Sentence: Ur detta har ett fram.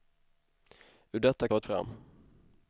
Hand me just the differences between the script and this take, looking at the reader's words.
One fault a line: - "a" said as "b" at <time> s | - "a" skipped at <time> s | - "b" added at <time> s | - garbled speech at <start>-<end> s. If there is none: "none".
none